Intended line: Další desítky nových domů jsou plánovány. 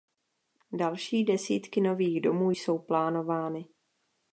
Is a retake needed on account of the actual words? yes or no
no